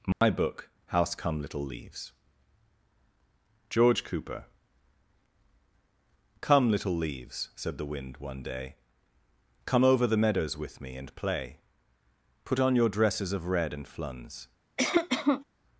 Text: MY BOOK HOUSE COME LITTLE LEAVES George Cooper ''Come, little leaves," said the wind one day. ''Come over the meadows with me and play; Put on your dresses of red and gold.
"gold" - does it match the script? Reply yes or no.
no